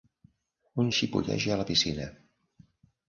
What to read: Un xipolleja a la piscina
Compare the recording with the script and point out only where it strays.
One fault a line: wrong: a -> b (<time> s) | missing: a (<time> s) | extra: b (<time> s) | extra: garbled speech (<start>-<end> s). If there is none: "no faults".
no faults